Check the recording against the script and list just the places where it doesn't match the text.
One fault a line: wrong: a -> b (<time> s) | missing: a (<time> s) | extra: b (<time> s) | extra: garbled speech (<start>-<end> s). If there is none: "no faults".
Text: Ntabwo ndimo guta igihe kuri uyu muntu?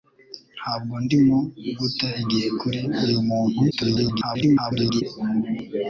extra: garbled speech (3.7-5.0 s)